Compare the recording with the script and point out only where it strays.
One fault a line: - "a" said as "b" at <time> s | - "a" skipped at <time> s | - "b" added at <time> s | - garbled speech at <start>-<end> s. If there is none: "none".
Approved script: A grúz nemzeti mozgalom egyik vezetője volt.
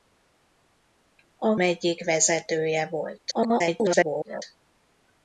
- "grúz nemzeti mozgalom" skipped at 1.6 s
- garbled speech at 3.3-4.4 s